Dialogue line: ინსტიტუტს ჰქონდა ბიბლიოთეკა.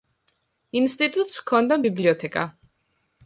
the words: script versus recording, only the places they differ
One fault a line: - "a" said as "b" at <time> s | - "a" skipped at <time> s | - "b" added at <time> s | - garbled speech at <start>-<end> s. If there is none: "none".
none